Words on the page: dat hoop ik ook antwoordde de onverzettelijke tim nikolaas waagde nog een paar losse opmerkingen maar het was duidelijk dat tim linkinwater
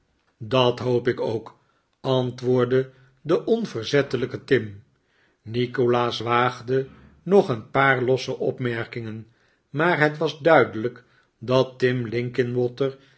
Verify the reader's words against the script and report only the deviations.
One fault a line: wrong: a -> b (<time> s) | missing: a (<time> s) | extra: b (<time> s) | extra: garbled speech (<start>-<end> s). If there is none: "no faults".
no faults